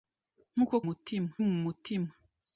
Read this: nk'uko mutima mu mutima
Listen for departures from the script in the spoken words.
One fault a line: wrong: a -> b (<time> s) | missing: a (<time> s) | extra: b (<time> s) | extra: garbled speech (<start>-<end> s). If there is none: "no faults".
no faults